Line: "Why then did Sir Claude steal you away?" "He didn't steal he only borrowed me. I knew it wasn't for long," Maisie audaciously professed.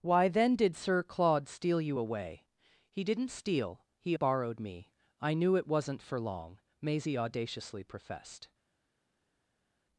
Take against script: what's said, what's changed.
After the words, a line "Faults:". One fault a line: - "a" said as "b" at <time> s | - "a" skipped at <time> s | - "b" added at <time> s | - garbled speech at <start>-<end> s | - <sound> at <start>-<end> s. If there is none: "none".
"Why then did Sir Claude steal you away?" "He didn't steal he borrowed me. I knew it wasn't for long," Maisie audaciously professed.
Faults:
- "only" skipped at 4.2 s